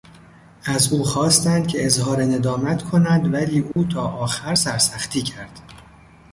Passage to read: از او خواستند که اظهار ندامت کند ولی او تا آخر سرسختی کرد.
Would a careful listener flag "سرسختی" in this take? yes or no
no